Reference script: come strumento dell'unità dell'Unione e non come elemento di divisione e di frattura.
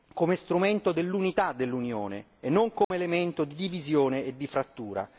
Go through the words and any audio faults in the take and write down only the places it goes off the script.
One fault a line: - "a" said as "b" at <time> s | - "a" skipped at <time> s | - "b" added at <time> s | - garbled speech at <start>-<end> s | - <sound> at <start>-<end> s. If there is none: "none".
- dropout at 2.8-2.9 s